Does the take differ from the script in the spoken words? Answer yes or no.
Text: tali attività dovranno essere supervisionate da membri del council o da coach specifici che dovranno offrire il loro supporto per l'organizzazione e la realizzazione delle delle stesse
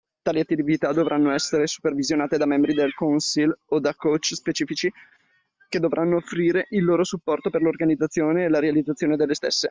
yes